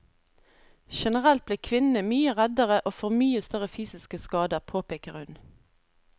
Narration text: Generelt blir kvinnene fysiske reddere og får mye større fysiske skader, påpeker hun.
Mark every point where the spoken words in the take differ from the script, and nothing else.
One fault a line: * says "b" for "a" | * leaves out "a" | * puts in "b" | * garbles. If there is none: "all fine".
* says "mye" for "fysiske"